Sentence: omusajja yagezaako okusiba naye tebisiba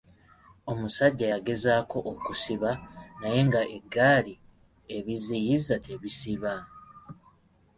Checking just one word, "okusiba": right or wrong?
right